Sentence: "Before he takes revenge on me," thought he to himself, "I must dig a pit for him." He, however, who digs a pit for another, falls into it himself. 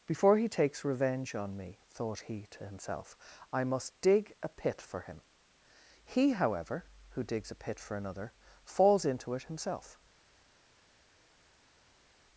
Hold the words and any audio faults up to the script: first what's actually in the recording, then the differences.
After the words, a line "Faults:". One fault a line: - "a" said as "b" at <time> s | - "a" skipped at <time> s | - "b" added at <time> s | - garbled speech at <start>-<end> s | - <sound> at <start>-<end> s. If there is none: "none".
"Before he takes revenge on me," thought he to himself, "I must dig a pit for him." He, however, who digs a pit for another, falls into it himself.
Faults:
none